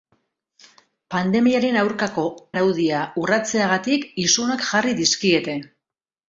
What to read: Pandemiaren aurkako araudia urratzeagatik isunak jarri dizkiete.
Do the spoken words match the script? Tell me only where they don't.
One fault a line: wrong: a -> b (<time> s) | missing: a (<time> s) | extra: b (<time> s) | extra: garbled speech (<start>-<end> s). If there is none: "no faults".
no faults